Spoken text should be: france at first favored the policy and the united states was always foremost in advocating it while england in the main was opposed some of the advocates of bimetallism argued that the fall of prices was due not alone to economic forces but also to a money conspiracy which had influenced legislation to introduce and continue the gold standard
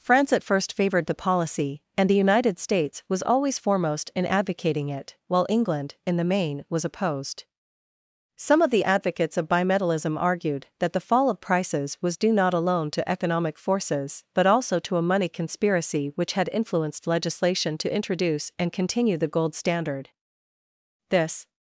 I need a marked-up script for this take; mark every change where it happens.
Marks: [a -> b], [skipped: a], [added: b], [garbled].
france at first favored the policy and the united states was always foremost in advocating it while england in the main was opposed some of the advocates of bimetallism argued that the fall of prices was due not alone to economic forces but also to a money conspiracy which had influenced legislation to introduce and continue the gold standard [added: this]